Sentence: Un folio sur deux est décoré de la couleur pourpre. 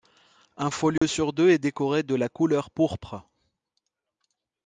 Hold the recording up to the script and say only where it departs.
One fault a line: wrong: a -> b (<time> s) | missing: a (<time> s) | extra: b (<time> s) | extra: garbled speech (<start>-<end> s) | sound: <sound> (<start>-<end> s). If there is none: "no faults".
sound: dropout (1.0-1.0 s)